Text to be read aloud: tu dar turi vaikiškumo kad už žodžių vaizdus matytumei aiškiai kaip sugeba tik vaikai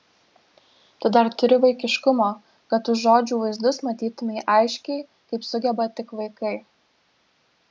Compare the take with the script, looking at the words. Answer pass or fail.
pass